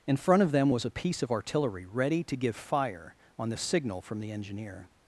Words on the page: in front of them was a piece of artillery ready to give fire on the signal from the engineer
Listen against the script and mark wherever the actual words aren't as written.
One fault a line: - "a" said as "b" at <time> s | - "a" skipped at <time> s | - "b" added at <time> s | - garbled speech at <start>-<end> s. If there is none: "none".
none